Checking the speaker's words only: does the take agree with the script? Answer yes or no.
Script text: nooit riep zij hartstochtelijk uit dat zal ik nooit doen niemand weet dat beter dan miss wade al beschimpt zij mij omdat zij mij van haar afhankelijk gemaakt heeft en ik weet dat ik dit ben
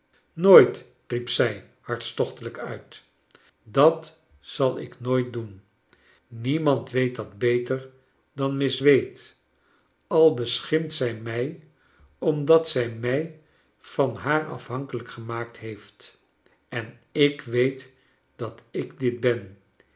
yes